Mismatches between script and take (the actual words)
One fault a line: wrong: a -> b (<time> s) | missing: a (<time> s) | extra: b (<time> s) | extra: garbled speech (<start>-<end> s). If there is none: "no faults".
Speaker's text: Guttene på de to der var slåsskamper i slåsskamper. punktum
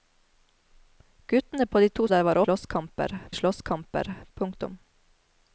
no faults